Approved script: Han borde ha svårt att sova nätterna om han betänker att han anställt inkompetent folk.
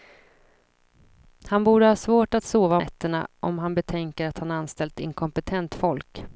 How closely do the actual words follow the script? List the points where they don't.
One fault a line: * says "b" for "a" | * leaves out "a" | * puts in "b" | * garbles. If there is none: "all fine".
all fine